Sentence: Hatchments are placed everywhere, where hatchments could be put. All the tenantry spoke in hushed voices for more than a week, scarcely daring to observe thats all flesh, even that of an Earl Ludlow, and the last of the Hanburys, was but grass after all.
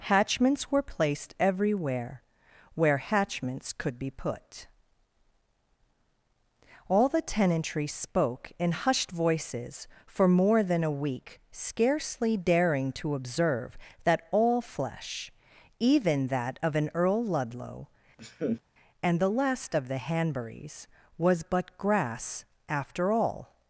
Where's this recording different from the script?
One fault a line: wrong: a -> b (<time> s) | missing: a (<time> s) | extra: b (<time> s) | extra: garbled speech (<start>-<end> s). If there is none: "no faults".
wrong: are -> were (0.7 s)
wrong: thats -> that (14.1 s)